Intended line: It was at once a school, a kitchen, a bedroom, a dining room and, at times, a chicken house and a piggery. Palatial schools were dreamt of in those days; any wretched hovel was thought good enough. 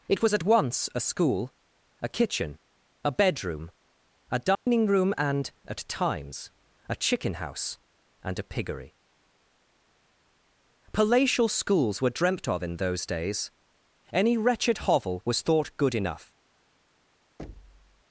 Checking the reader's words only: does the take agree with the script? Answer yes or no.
yes